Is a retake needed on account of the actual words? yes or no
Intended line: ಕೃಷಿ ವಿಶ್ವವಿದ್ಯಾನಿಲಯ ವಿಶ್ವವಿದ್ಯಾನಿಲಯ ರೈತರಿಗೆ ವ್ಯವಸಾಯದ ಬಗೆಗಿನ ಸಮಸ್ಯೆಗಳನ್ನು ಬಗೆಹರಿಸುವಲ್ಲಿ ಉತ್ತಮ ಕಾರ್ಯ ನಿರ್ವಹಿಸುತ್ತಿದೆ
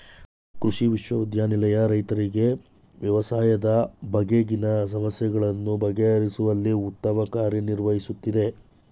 yes